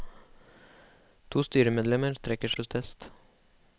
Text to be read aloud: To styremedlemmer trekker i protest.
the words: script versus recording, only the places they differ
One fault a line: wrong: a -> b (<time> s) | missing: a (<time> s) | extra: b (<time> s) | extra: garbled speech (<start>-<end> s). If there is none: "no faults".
no faults